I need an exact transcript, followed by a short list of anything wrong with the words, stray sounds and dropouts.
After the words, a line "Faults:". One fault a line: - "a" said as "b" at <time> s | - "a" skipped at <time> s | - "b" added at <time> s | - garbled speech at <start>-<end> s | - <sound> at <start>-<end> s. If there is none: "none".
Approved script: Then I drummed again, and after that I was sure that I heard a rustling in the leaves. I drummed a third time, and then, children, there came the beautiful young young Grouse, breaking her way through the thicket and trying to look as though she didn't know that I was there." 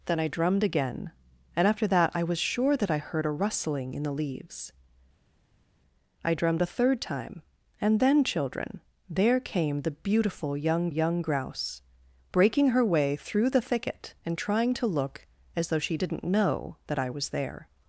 Then I drummed again, and after that I was sure that I heard a rustling in the leaves. I drummed a third time, and then, children, there came the beautiful young young Grouse, breaking her way through the thicket and trying to look as though she didn't know that I was there."
Faults:
none